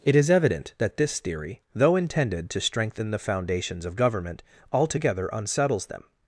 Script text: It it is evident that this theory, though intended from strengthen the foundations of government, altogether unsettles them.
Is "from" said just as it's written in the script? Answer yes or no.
no